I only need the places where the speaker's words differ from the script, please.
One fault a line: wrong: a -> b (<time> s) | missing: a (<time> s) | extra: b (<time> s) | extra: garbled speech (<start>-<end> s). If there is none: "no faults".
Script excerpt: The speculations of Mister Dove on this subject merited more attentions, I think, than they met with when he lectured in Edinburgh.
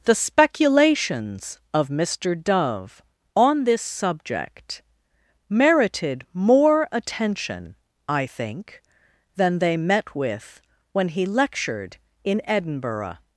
wrong: attentions -> attention (6.9 s)